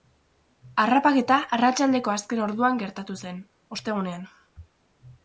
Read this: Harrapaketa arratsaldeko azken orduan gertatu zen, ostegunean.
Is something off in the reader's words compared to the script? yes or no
no